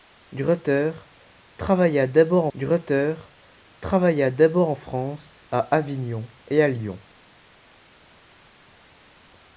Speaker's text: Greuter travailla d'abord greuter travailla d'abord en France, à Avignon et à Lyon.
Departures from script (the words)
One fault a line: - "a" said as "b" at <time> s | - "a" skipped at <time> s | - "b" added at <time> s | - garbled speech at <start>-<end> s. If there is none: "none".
none